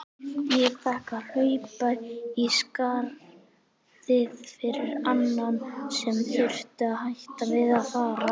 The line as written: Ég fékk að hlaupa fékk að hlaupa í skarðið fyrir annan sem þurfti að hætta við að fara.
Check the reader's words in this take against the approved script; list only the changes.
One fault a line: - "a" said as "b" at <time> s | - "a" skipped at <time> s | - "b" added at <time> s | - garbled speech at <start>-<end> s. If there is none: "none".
- "fékk að hlaupa" skipped at 1.9 s